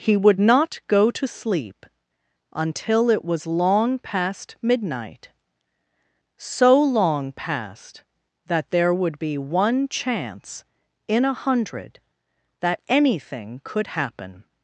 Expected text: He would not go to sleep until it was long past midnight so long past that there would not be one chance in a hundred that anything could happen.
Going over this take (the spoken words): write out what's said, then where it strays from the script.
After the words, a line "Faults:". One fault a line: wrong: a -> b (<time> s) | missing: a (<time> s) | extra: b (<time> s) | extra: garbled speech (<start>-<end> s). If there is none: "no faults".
He would not go to sleep until it was long past midnight so long past that there would be one chance in a hundred that anything could happen.
Faults:
missing: not (9.2 s)